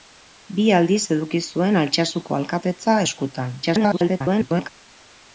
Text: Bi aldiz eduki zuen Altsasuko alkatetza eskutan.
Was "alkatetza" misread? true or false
false